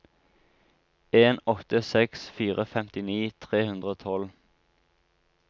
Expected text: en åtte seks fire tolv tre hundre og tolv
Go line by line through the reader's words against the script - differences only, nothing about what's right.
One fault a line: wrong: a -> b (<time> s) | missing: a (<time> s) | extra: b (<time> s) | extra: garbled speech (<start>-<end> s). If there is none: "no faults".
wrong: tolv -> femtini (2.7 s)